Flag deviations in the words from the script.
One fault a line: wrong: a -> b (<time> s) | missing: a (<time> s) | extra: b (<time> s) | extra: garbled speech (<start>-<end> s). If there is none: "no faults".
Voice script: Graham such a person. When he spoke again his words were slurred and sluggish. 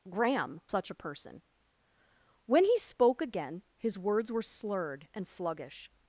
no faults